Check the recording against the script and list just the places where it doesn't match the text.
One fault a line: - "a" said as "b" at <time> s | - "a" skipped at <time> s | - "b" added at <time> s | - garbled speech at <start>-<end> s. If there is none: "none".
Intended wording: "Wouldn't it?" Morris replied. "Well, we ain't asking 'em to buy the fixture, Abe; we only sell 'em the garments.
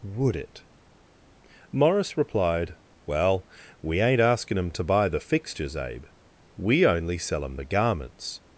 - "Wouldn't" said as "Would" at 0.0 s
- "fixture" said as "fixtures" at 5.2 s